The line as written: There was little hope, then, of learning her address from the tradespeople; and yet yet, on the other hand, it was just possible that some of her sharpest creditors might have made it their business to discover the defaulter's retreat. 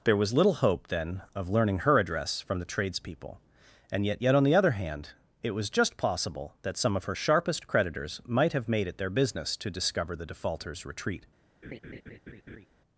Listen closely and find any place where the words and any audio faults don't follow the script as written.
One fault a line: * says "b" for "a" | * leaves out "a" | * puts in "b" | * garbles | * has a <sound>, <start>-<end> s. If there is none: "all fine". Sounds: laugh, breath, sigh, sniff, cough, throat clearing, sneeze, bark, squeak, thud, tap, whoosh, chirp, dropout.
* has a laugh, 11.6-12.7 s